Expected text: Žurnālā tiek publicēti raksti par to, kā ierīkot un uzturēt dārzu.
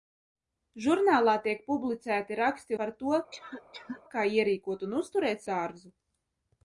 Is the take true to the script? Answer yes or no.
yes